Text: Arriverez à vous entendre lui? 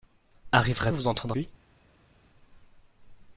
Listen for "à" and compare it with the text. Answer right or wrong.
right